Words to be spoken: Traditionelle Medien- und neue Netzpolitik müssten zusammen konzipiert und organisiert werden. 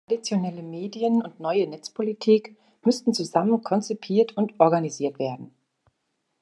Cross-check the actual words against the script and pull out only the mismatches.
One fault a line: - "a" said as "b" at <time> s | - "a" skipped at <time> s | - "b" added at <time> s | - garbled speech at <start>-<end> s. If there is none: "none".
none